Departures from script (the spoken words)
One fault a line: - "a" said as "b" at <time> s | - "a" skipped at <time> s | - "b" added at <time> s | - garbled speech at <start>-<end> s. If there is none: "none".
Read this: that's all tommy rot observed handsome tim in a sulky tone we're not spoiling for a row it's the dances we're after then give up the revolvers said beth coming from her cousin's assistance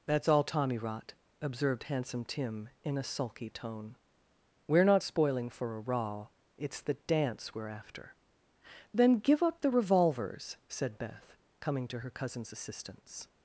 - "dances" said as "dance" at 6.9 s
- "from" said as "to" at 11.9 s